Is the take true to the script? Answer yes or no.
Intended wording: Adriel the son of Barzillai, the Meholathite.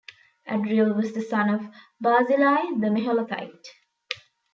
no